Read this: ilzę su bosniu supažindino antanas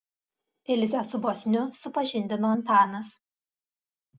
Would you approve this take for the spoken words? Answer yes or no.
yes